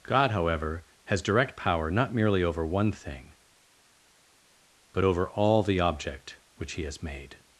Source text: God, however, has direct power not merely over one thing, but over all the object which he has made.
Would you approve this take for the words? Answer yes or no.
yes